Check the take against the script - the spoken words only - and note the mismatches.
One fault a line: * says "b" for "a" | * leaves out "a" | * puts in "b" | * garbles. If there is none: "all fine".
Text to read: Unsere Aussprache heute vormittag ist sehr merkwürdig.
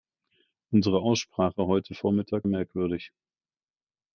* leaves out "ist sehr"